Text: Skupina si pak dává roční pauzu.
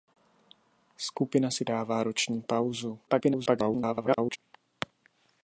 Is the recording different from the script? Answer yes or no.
yes